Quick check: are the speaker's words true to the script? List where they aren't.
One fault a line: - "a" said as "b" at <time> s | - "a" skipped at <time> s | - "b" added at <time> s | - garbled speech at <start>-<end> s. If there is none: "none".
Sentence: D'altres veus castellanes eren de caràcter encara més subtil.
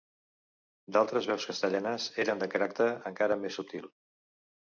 none